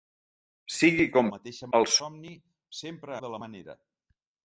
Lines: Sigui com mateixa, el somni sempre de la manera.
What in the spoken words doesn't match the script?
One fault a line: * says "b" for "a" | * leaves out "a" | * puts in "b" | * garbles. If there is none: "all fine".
all fine